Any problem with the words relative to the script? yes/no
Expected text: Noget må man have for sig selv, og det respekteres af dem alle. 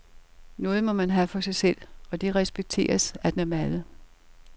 no